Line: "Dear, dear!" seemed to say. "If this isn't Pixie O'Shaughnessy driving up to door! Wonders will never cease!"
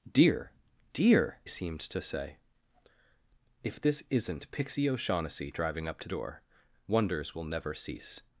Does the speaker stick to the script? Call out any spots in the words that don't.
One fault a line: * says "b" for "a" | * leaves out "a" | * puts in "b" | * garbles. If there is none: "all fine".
all fine